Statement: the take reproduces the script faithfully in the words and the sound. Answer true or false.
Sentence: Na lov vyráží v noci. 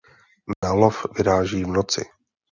false